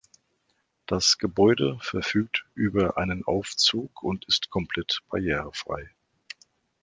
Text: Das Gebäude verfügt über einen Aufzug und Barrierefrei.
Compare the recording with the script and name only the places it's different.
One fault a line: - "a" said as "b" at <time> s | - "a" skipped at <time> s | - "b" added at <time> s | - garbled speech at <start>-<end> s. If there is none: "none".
- "ist komplett" added at 4.3 s